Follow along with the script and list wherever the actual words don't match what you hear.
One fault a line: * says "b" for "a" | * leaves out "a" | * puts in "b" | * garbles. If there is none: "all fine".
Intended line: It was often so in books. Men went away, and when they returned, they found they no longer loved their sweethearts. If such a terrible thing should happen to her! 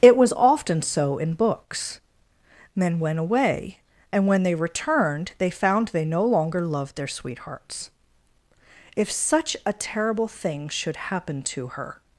all fine